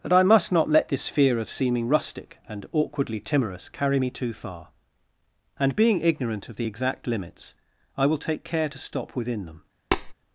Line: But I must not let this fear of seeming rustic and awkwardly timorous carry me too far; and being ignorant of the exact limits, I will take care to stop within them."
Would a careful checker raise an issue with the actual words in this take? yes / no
yes